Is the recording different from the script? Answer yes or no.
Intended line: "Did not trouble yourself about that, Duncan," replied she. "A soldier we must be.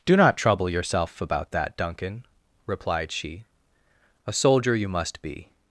yes